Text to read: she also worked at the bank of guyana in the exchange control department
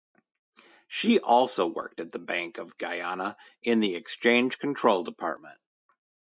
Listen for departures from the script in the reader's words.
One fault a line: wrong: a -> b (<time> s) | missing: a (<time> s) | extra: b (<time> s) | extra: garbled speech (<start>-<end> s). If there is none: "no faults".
no faults